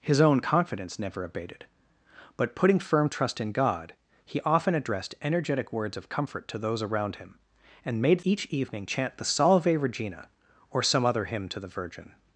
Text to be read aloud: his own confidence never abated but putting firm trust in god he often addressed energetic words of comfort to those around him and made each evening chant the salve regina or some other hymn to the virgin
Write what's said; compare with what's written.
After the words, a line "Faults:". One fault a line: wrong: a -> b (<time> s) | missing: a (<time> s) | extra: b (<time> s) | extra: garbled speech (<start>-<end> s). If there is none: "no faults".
his own confidence never abated but putting firm trust in god he often addressed energetic words of comfort to those around him and made each evening chant the salve regina or some other hymn to the virgin
Faults:
no faults